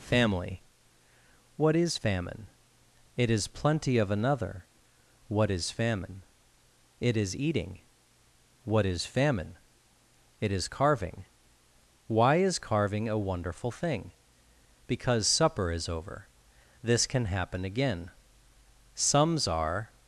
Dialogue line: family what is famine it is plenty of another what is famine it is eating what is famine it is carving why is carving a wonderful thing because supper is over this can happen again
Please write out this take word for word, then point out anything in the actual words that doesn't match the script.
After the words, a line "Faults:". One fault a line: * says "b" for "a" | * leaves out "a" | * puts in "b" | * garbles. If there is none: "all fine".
family what is famine it is plenty of another what is famine it is eating what is famine it is carving why is carving a wonderful thing because supper is over this can happen again sums are
Faults:
* puts in "sums are"